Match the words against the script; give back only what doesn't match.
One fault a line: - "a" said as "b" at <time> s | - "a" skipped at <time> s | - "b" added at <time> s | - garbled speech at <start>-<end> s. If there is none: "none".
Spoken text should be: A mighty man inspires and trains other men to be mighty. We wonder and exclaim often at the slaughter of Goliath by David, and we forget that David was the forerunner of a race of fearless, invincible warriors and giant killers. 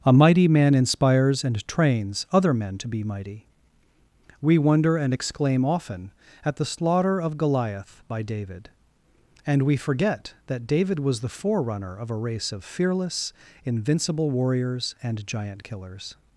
none